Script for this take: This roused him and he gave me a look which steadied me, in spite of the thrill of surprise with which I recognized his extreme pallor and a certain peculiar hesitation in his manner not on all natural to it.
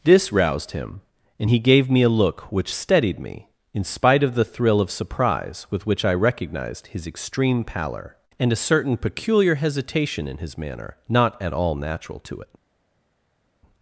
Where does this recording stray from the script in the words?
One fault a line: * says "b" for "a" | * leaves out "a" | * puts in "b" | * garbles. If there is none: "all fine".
* says "at" for "on"